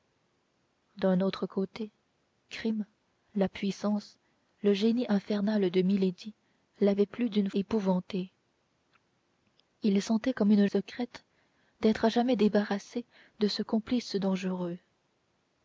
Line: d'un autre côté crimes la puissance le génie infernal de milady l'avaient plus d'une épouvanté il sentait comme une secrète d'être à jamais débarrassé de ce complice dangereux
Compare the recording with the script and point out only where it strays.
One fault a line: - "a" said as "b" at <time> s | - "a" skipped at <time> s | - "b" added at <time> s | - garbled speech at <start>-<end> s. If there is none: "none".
none